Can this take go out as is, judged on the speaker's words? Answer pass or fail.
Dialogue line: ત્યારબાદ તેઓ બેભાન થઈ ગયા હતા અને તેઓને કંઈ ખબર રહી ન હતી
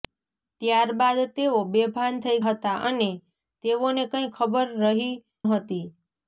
fail